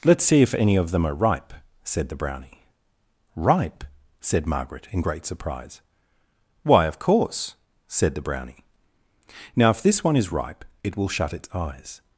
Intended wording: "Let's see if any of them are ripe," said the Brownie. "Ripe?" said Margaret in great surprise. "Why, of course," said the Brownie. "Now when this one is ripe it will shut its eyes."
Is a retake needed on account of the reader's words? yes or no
yes